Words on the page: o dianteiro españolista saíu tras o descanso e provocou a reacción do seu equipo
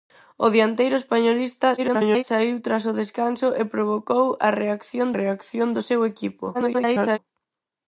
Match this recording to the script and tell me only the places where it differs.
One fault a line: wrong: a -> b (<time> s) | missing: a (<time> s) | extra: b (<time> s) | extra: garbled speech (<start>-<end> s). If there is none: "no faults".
extra: garbled speech (1.8-2.2 s)
extra: reacción (5.2 s)
extra: garbled speech (6.5-7.2 s)